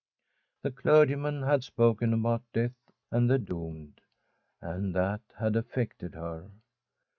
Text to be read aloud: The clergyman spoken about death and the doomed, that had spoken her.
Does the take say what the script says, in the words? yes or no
no